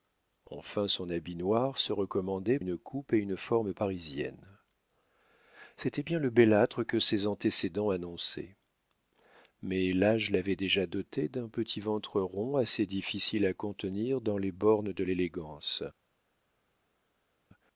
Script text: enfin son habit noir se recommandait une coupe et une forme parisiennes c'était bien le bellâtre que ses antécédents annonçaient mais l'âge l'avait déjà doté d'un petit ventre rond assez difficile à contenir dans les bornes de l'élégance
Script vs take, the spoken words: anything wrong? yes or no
no